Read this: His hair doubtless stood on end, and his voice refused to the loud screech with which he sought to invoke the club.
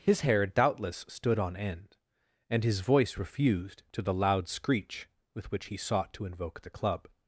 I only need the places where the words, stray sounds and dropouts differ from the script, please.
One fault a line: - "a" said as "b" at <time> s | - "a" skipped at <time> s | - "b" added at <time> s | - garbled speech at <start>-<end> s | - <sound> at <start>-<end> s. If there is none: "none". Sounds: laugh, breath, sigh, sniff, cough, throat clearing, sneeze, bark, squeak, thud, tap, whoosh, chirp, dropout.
none